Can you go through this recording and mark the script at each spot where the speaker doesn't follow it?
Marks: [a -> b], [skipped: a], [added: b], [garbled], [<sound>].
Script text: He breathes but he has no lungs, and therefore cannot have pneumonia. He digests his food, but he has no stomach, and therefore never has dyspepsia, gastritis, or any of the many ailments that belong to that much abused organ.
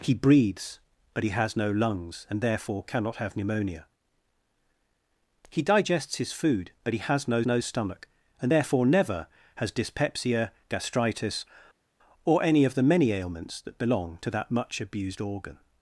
He breathes but he has no lungs, and therefore cannot have pneumonia. He digests his food, but he has no [added: no] stomach, and therefore never has dyspepsia, gastritis, or any of the many ailments that belong to that much abused organ.